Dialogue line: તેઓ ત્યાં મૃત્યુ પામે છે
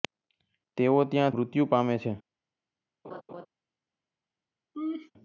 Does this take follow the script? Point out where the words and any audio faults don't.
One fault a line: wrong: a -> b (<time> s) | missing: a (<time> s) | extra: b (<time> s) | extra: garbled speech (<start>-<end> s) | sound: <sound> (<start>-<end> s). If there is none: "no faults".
sound: laugh (3.0-3.5 s)
sound: laugh (4.7-5.1 s)